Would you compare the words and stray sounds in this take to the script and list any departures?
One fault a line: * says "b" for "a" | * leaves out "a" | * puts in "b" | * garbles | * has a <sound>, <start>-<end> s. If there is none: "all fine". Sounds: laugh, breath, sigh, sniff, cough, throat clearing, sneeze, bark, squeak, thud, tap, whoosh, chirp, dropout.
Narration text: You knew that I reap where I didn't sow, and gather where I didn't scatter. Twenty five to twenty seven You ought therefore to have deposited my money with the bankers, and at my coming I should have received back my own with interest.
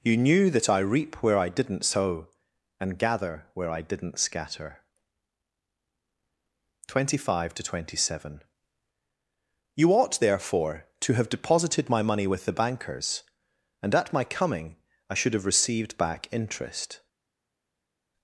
* leaves out "my own with"